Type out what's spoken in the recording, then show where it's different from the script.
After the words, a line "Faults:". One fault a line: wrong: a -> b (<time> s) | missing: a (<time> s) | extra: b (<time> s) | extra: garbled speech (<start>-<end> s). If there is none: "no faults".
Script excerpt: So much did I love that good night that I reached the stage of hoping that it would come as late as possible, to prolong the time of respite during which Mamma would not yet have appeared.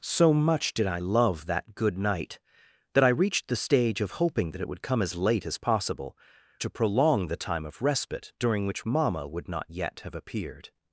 So much did I love that good night that I reached the stage of hoping that it would come as late as possible, to prolong the time of respite during which Mamma would not yet have appeared.
Faults:
no faults